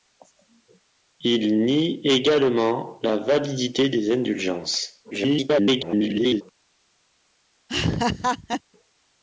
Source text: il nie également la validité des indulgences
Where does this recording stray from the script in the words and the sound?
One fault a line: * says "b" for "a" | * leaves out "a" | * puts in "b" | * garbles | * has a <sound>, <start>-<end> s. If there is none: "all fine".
* garbles
* has a laugh, 7.7-8.6 s